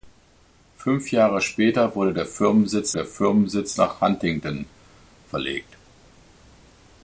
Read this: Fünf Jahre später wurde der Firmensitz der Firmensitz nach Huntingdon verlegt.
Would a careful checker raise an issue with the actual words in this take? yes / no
no